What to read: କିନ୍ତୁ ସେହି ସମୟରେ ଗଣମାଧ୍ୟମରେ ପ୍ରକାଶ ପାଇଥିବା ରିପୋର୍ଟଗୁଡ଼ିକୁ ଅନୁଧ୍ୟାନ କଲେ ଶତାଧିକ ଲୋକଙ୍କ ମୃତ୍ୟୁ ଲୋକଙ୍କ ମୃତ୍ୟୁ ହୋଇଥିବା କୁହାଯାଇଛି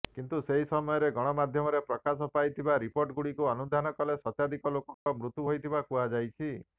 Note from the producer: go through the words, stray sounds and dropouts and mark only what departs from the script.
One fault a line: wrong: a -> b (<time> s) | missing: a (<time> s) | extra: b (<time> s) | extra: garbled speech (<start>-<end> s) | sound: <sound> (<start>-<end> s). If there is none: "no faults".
sound: dropout (4.9-5.1 s)
missing: ଲୋକଙ୍କ ମୃତ୍ୟୁ (5.5 s)